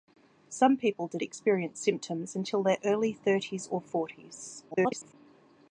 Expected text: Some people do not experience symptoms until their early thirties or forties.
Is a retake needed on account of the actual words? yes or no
yes